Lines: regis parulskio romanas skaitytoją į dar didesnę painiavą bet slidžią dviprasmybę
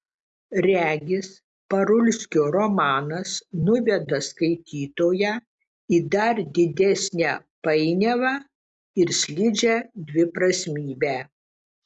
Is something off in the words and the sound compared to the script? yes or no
yes